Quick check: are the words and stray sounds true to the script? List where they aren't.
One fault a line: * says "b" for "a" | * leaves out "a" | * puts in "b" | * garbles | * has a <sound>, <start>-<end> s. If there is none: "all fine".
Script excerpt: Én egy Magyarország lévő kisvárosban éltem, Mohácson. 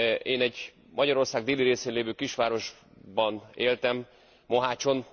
* puts in "déli részén"